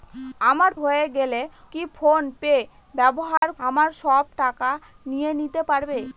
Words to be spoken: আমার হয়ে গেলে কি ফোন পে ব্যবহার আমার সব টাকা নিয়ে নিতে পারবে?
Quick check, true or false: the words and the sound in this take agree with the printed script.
false